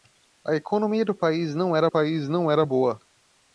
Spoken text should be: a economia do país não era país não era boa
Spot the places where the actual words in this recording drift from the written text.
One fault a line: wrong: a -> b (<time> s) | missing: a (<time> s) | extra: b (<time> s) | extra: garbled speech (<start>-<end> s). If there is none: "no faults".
no faults